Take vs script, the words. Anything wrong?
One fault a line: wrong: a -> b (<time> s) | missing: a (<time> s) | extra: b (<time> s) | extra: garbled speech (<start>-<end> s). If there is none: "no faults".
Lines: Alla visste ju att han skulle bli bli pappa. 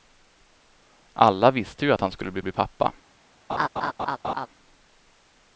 no faults